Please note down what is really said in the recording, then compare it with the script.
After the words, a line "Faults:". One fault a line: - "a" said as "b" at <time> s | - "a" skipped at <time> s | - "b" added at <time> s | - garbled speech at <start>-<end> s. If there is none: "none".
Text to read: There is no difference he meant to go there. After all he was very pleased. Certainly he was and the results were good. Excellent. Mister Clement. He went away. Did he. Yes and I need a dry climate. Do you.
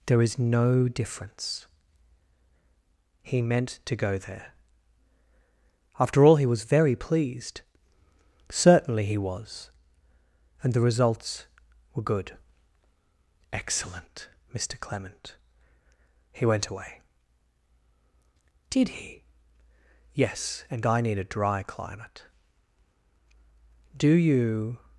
There is no difference he meant to go there. After all he was very pleased. Certainly he was and the results were good. Excellent. Mister Clement. He went away. Did he. Yes and I need a dry climate. Do you.
Faults:
none